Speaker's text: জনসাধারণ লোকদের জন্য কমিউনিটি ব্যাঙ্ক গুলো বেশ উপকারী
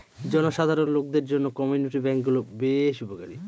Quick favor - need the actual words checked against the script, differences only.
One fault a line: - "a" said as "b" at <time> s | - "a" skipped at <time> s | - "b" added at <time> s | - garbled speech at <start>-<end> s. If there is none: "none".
none